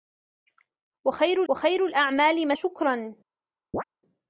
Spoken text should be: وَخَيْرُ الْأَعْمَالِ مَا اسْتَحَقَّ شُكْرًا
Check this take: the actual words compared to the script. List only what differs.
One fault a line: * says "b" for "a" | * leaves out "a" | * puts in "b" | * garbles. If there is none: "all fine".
* puts in "وَخَيْرُ"
* leaves out "اسْتَحَقَّ"